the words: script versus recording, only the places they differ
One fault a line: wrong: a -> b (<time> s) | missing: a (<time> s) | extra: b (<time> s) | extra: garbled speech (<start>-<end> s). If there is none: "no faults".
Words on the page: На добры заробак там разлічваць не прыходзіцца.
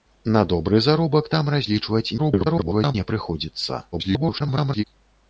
extra: garbled speech (2.2-2.9 s)
extra: garbled speech (3.9-4.8 s)